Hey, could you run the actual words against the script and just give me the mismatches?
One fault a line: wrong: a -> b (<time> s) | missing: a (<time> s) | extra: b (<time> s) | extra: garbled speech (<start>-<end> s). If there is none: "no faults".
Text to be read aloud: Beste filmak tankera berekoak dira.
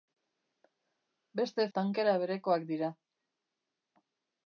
missing: filmak (1.7 s)